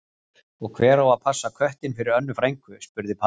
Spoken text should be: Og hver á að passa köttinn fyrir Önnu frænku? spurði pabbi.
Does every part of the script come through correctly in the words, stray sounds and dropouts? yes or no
yes